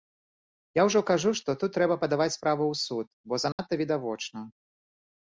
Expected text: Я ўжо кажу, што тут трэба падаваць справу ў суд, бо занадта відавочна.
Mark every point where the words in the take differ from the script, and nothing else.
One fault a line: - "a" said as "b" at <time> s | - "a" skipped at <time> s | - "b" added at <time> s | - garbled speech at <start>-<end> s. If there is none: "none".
none